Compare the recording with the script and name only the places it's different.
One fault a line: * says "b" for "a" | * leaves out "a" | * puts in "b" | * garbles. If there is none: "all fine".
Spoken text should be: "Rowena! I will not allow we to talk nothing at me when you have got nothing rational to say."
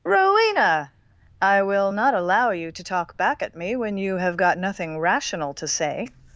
* says "you" for "we"
* says "back" for "nothing"